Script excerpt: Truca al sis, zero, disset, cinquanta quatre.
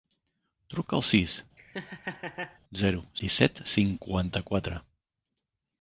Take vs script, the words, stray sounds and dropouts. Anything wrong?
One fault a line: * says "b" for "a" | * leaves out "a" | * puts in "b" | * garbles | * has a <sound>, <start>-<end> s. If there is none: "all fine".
* has a laugh, 1.6-2.6 s